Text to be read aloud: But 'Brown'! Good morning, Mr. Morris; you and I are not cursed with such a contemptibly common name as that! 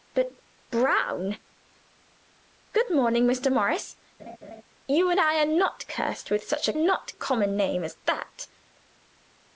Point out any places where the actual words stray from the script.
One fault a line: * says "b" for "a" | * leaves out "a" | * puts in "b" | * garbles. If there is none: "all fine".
* says "not" for "contemptibly"